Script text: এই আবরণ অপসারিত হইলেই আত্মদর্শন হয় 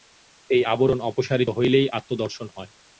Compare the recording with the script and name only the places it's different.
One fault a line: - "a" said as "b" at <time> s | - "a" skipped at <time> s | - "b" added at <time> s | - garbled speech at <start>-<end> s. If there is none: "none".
none